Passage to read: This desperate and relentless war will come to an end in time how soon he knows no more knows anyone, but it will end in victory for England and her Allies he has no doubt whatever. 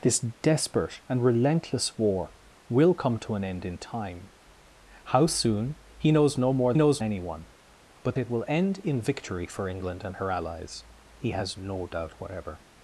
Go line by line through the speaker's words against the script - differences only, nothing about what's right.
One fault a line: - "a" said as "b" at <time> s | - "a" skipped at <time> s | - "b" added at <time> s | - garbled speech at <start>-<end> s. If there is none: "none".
none